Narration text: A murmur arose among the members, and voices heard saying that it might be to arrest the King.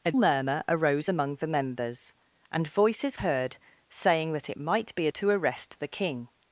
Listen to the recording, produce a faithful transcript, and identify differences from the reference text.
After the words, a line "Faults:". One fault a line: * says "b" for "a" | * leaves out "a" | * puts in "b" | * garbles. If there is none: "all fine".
A murmur arose among the members, and voices heard saying that it might be to arrest the King.
Faults:
all fine